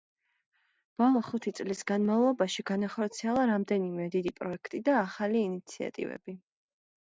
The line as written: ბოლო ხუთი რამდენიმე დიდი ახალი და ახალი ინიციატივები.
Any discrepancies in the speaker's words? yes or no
yes